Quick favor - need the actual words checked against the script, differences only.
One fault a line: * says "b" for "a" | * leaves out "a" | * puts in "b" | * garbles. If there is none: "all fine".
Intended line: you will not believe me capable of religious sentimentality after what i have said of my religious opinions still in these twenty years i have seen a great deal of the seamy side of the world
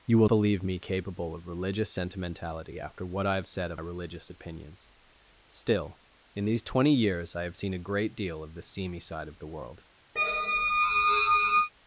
* leaves out "not"
* leaves out "my"